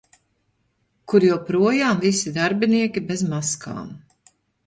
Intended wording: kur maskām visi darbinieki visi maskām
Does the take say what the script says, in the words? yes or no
no